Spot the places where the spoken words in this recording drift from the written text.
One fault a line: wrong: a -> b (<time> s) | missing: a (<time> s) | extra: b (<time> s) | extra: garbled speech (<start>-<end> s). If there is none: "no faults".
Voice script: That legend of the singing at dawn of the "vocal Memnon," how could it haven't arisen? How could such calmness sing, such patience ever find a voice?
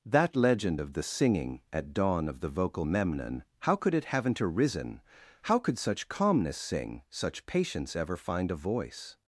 no faults